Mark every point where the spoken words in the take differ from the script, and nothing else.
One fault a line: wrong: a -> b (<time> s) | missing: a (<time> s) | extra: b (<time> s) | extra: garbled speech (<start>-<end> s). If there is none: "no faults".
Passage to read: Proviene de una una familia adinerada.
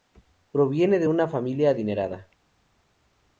missing: una (1.3 s)